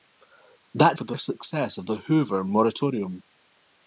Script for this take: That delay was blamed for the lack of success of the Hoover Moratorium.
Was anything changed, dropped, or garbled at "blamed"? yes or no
yes